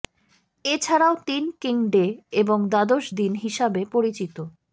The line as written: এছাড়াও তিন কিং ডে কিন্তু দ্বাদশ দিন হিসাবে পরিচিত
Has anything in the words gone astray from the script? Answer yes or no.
yes